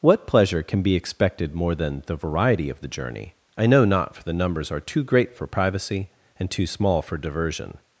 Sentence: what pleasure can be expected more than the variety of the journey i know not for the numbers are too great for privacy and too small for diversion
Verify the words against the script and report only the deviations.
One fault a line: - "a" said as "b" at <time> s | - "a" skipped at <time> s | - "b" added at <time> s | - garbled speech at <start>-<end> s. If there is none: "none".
none